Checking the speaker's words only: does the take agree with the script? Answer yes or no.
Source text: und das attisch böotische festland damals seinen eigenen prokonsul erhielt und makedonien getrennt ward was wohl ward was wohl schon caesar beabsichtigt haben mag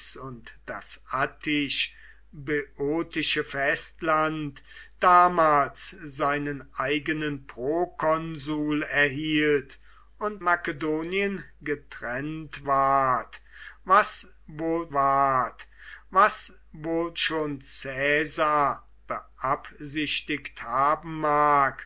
yes